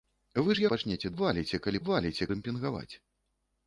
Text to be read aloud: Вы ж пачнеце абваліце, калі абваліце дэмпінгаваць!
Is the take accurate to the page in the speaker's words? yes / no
yes